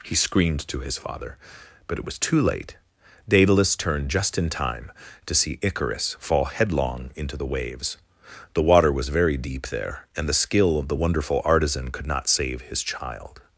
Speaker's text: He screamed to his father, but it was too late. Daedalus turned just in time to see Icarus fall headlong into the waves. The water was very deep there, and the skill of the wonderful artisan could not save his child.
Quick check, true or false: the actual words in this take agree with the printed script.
true